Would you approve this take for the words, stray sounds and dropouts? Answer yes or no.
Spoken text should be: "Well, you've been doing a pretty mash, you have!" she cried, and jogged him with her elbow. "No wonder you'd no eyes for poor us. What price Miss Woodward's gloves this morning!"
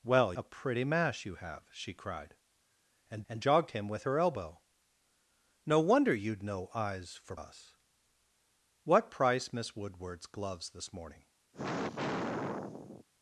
no